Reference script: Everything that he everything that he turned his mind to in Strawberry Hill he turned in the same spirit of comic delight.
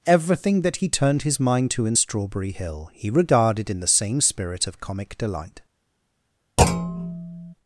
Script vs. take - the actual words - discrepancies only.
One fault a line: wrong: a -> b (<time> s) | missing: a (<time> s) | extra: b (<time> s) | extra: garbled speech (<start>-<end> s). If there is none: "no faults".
missing: everything that he (0.9 s)
wrong: turned -> regarded (3.1 s)